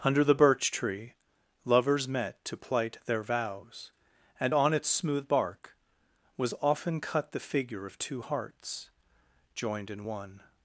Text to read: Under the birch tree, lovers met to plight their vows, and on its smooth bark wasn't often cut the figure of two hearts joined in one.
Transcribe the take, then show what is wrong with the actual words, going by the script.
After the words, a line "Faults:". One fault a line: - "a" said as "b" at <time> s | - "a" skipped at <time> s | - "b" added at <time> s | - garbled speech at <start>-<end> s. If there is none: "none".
Under the birch tree, lovers met to plight their vows, and on its smooth bark was often cut the figure of two hearts joined in one.
Faults:
- "wasn't" said as "was" at 6.4 s